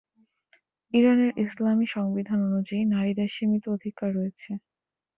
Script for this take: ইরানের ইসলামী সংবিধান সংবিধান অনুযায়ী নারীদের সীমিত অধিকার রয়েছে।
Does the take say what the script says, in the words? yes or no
no